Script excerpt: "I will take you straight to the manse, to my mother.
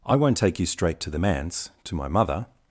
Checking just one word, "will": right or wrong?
wrong